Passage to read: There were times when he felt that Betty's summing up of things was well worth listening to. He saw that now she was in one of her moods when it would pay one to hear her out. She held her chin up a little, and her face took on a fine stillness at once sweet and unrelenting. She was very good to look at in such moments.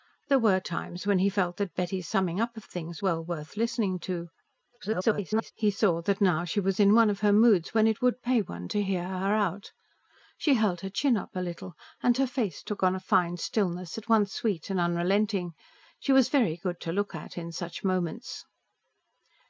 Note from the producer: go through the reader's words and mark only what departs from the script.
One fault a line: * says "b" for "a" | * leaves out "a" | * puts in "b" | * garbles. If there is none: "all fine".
* leaves out "was"
* garbles